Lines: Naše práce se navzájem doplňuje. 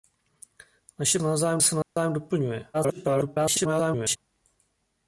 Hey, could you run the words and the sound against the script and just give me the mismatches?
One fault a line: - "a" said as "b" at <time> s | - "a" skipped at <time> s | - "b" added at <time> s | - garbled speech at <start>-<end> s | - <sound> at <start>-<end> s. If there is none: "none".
- "práce" said as "navzájem" at 1.2 s
- dropout at 1.8-2.0 s
- garbled speech at 2.7-4.2 s